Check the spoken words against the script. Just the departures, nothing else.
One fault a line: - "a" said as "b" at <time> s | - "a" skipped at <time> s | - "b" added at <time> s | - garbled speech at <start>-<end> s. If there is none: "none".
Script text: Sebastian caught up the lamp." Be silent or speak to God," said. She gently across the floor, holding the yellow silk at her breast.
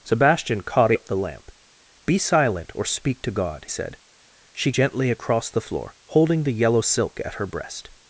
none